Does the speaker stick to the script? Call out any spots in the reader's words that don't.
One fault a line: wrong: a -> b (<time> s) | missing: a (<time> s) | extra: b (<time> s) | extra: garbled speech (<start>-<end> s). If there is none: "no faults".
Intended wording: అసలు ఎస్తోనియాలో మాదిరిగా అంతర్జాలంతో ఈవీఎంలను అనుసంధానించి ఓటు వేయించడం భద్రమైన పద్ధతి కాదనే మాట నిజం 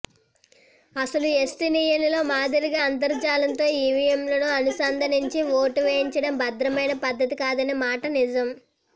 no faults